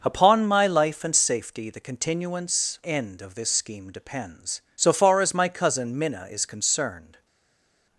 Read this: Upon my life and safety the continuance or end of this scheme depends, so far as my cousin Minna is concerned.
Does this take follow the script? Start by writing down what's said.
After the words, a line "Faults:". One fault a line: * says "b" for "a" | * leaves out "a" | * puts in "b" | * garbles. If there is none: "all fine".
Upon my life and safety the continuance end of this scheme depends, so far as my cousin Minna is concerned.
Faults:
* leaves out "or"